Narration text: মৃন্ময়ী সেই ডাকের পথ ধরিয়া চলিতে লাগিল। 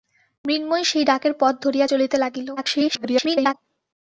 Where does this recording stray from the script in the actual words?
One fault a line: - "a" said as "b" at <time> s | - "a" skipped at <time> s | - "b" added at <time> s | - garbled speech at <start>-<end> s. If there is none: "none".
- garbled speech at 2.6-3.5 s